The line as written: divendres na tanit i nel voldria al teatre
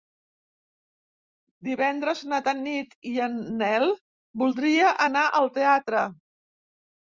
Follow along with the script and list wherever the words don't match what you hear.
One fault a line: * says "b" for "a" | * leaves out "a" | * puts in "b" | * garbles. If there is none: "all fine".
* puts in "en"
* puts in "anar"